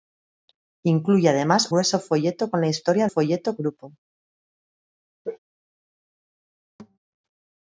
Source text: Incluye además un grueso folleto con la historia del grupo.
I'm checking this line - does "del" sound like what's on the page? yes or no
no